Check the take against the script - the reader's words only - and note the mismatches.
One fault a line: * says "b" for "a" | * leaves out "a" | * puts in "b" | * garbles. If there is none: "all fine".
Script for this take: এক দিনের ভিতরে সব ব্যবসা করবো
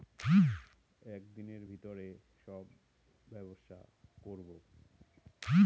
all fine